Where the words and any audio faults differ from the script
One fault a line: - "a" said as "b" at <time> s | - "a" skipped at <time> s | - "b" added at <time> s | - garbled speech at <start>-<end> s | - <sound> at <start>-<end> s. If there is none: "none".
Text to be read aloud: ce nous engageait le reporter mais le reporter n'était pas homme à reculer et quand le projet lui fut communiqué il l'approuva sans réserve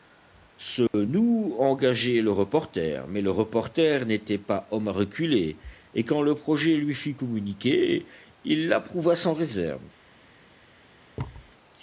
- dropout at 0.9-0.9 s
- thud at 11.2-11.5 s